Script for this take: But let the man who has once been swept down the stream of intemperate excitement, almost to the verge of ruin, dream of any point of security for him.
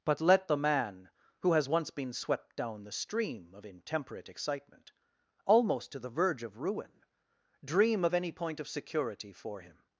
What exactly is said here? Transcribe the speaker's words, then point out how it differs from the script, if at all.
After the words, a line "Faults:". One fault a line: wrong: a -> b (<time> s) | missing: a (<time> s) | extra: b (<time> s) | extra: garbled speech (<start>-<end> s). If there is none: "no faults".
But let the man who has once been swept down the stream of intemperate excitement, almost to the verge of ruin, dream of any point of security for him.
Faults:
no faults